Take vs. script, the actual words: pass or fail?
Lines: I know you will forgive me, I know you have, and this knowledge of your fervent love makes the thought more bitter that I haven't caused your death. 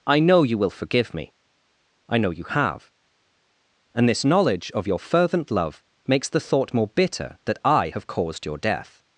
fail